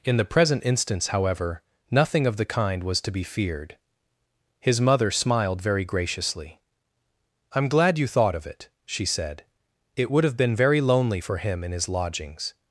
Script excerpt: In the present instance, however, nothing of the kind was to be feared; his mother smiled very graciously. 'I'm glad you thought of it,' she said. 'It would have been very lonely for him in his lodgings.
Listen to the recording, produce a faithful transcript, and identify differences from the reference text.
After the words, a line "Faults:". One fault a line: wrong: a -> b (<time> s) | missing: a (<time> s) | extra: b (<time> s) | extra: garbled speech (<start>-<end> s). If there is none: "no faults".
In the present instance, however, nothing of the kind was to be feared; his mother smiled very graciously. 'I'm glad you thought of it,' she said. 'It would have been very lonely for him in his lodgings.
Faults:
no faults